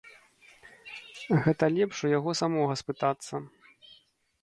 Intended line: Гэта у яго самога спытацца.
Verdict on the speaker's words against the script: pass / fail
fail